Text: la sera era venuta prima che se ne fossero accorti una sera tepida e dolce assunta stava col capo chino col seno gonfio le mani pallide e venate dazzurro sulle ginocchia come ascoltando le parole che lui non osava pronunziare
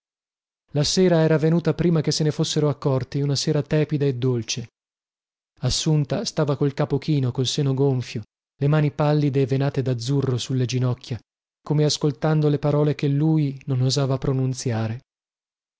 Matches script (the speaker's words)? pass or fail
pass